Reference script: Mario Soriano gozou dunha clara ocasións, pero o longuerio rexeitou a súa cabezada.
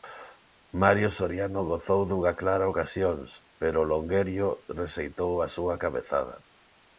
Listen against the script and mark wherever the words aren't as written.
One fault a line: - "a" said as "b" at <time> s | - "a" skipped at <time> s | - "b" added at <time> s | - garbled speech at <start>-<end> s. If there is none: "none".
none